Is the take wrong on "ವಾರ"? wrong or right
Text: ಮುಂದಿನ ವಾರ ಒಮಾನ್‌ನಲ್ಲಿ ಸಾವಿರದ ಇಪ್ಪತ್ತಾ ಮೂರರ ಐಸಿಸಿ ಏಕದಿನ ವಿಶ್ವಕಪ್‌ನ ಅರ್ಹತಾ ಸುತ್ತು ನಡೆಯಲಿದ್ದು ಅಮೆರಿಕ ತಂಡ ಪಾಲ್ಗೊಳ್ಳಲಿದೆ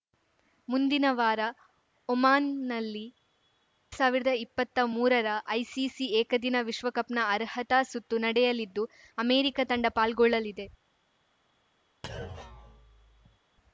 right